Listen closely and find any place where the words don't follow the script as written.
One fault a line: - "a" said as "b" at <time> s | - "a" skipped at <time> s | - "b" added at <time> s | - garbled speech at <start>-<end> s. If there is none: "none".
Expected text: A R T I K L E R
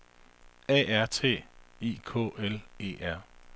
none